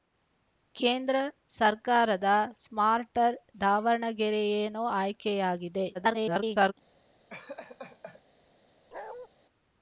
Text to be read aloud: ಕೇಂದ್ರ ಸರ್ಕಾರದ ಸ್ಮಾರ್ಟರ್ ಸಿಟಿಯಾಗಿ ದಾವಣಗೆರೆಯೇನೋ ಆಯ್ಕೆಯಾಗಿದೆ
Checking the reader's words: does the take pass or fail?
fail